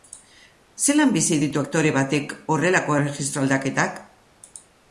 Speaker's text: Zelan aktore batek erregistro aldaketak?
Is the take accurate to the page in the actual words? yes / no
no